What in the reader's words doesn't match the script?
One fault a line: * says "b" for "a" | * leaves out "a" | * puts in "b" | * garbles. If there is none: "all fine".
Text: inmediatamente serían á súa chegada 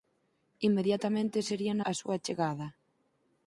all fine